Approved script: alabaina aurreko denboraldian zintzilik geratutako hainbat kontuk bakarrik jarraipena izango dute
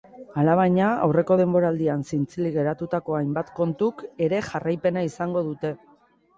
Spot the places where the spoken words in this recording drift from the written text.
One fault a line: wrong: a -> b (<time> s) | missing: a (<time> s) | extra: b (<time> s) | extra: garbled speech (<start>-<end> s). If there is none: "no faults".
wrong: bakarrik -> ere (4.3 s)